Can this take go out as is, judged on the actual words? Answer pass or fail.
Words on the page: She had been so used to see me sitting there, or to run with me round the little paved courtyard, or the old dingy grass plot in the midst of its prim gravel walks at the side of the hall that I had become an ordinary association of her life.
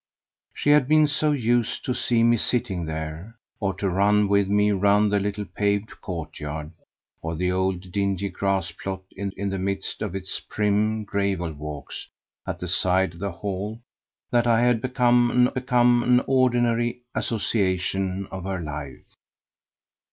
fail